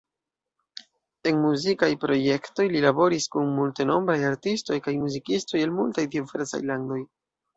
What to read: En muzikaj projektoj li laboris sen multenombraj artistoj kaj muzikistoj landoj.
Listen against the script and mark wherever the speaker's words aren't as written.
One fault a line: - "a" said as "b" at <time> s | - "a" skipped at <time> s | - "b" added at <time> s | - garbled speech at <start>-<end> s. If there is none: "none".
- "sen" said as "kun" at 3.4 s
- "el multaj diversaj" added at 5.7 s